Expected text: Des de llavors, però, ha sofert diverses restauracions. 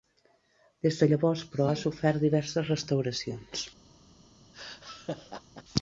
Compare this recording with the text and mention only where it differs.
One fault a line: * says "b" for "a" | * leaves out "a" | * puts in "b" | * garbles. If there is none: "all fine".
all fine